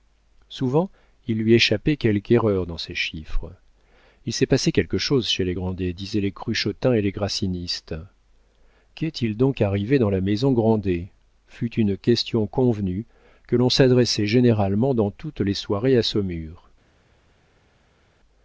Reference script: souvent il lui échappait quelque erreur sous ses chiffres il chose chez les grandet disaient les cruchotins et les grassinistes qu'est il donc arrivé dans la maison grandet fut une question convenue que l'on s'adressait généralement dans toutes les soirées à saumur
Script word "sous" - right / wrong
wrong